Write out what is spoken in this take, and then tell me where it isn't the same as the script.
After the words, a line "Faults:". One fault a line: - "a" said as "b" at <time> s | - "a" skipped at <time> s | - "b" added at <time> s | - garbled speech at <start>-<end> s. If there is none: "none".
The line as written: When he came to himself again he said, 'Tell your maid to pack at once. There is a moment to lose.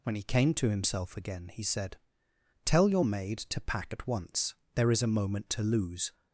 When he came to himself again he said, 'Tell your maid to pack at once. There is a moment to lose.
Faults:
none